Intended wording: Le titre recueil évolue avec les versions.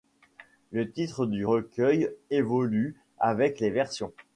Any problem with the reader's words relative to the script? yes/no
yes